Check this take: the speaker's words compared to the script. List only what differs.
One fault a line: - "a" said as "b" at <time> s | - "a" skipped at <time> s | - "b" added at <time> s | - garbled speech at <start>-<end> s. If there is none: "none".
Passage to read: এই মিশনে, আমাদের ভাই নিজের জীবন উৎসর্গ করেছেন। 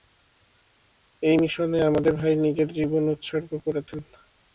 none